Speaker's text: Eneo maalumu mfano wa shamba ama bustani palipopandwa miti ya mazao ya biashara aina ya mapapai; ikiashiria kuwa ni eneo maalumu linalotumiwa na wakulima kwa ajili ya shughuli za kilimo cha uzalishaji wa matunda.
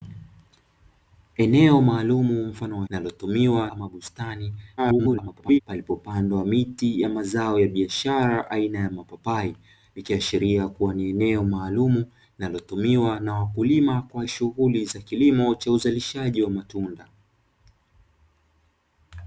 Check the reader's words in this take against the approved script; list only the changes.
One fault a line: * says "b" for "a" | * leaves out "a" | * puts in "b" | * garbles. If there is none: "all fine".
* says "linalotumiwa" for "shamba"
* garbles
* leaves out "ajili"